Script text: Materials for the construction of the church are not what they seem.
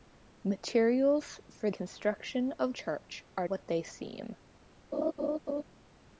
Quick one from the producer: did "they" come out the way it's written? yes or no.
yes